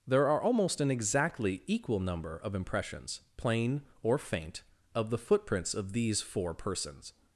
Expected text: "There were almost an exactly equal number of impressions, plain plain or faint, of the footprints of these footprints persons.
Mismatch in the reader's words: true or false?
true